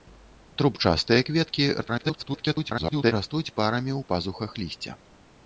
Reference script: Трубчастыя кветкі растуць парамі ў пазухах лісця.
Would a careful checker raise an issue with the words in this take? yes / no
yes